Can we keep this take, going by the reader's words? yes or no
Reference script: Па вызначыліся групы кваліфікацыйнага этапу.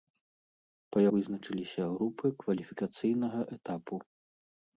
yes